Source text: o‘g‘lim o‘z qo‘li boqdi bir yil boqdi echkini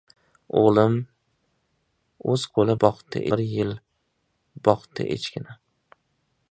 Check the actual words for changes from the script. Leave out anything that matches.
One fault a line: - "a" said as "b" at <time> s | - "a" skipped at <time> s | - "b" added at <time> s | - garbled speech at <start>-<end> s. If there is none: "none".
none